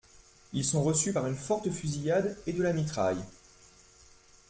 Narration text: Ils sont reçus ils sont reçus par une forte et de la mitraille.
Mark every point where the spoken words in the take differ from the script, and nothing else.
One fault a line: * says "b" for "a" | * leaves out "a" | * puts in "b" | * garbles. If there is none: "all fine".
* leaves out "ils sont reçus"
* puts in "fusillade"